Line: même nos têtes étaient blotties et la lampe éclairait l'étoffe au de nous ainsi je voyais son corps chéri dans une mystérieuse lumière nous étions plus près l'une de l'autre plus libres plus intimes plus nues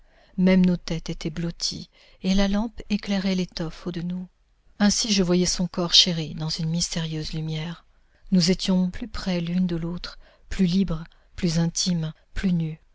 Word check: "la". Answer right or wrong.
right